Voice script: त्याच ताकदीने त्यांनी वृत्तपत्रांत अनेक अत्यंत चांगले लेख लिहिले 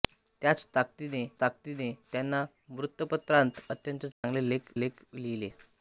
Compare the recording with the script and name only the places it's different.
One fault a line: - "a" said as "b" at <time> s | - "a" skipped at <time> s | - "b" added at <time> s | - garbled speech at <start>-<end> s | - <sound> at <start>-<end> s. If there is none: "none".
- "ताकदीने" added at 1.4 s
- "अनेक" skipped at 3.6 s
- dropout at 4.1-4.2 s
- "लेख" added at 4.8 s